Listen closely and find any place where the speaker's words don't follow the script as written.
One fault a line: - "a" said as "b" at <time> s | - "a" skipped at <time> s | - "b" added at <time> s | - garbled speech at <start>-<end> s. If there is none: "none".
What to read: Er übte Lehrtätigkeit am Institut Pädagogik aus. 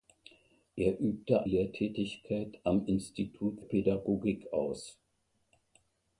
none